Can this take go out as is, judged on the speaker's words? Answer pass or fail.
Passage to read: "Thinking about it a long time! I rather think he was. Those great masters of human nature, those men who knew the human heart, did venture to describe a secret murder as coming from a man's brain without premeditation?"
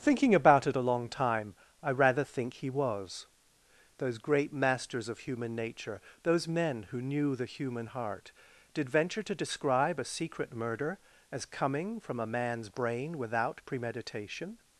pass